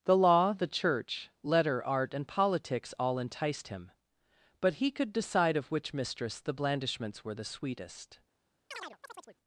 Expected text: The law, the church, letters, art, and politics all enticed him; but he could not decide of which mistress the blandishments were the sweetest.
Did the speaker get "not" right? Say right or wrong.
wrong